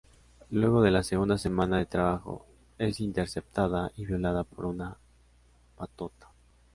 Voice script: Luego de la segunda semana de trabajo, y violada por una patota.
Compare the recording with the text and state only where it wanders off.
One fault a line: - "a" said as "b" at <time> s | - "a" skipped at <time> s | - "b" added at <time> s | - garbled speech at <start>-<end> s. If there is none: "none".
- "es interceptada" added at 2.8 s